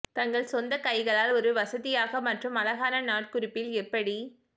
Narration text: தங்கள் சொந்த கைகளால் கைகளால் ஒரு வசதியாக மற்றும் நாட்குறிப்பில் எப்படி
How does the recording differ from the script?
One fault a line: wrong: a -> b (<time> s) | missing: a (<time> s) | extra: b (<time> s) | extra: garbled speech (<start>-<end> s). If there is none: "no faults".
missing: கைகளால் (1.3 s)
extra: அழகான (2.6 s)